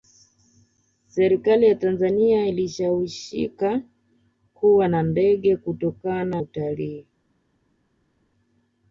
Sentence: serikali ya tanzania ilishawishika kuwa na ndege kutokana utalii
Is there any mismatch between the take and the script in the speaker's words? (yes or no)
no